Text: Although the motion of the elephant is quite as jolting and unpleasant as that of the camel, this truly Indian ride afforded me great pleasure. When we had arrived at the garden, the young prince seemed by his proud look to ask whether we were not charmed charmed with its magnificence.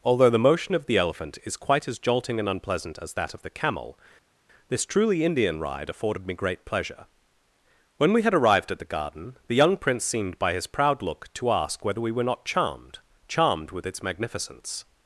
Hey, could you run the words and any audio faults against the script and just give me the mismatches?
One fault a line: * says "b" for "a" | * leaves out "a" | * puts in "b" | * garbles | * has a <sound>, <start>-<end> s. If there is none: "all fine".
all fine